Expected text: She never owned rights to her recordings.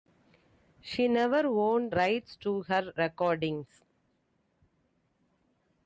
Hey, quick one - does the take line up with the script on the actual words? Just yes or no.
yes